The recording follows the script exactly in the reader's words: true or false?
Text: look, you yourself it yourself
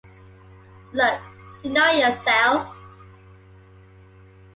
false